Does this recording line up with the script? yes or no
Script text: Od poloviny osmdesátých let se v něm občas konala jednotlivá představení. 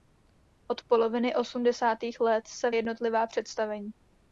no